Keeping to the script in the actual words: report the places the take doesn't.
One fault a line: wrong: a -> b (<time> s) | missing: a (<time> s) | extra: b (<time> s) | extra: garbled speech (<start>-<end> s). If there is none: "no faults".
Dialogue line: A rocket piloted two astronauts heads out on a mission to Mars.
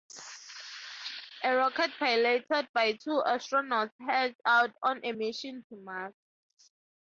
extra: by (2.7 s)